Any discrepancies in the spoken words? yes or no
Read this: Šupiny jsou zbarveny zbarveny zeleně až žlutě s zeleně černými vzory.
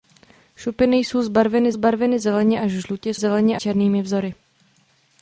no